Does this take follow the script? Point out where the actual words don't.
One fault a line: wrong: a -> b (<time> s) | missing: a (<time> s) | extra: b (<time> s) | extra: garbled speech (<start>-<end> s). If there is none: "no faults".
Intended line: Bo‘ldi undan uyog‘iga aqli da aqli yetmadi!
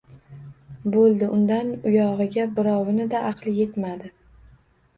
wrong: aqli -> birovini (2.6 s)